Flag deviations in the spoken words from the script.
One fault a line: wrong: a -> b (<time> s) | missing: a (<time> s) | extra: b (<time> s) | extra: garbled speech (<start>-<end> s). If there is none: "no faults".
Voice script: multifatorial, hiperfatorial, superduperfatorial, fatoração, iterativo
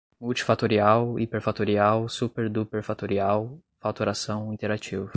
no faults